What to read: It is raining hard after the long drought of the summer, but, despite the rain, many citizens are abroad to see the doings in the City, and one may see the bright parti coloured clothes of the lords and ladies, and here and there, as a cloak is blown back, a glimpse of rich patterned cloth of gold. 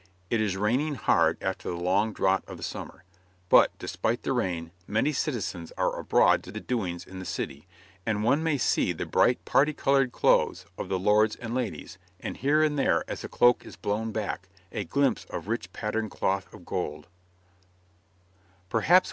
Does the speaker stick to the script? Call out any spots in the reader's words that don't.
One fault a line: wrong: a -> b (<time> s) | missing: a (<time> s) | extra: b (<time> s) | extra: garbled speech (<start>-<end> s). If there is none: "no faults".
missing: see (6.5 s)